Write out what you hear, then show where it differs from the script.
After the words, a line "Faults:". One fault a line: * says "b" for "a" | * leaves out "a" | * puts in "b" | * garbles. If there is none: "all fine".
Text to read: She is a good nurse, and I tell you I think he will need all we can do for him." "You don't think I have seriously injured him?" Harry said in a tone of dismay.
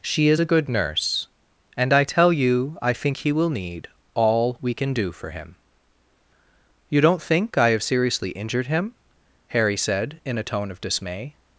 She is a good nurse, and I tell you I think he will need all we can do for him." "You don't think I have seriously injured him?" Harry said in a tone of dismay.
Faults:
all fine